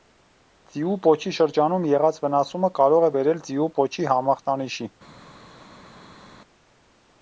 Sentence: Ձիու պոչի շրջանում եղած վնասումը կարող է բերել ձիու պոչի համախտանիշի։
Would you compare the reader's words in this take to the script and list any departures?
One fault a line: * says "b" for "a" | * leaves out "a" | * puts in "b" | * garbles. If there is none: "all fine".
all fine